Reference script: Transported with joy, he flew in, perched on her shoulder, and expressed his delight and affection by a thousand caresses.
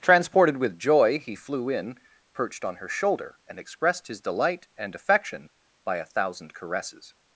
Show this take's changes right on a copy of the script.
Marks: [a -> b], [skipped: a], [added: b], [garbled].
Transported with joy, he flew in, perched on her shoulder, and expressed his delight and affection by a thousand caresses.